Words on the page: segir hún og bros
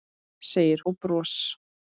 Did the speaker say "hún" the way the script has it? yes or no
no